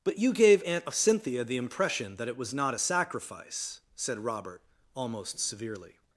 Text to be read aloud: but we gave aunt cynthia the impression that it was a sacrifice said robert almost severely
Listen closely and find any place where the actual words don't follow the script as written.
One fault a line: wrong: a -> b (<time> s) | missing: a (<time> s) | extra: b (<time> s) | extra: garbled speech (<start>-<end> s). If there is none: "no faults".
wrong: we -> you (0.2 s)
extra: not (2.5 s)